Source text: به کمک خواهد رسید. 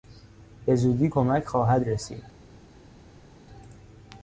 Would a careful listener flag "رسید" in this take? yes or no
no